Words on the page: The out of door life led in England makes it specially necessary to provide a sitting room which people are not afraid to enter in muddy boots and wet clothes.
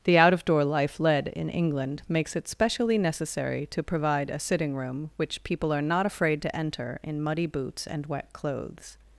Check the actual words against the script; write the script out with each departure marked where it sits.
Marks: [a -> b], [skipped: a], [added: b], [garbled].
The out of door life led in England makes it specially necessary to provide a sitting room which people are not afraid to enter in muddy boots and wet clothes.